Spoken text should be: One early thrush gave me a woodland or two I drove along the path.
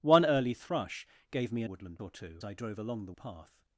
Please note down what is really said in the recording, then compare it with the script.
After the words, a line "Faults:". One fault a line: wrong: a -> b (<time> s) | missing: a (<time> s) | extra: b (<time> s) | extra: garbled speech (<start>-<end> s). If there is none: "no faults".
One early thrush gave me a woodland or two I drove along the path.
Faults:
no faults